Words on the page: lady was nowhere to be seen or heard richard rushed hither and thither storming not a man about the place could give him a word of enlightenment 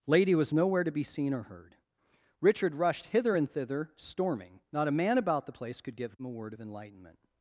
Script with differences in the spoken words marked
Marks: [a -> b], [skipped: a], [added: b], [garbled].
lady was nowhere to be seen or heard richard rushed hither and thither storming not a man about the place could give him a word of enlightenment